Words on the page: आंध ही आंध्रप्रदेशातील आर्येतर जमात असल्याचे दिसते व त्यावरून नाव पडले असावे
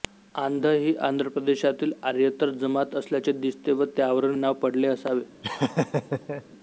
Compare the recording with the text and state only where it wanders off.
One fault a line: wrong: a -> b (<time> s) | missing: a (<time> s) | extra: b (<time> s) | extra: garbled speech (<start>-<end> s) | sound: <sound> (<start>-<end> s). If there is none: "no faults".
sound: laugh (5.4-6.4 s)